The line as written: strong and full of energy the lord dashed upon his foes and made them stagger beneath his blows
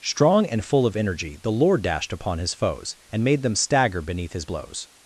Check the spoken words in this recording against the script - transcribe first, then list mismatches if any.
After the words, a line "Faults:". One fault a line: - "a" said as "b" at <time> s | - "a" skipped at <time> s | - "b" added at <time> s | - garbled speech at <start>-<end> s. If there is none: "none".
strong and full of energy the lord dashed upon his foes and made them stagger beneath his blows
Faults:
none